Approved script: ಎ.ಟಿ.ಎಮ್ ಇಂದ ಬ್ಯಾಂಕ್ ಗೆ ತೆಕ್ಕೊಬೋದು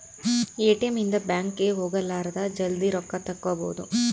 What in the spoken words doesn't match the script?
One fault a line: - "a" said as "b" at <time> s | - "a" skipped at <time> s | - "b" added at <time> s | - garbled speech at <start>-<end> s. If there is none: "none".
- "ಹೋಗಲಾರದ ಜಲ್ದೀ ರೊಕ್ಕ" added at 1.8 s